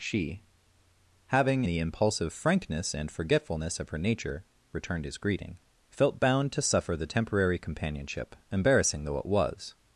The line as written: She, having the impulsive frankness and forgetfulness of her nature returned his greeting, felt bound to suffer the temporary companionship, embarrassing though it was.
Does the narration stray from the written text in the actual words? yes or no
no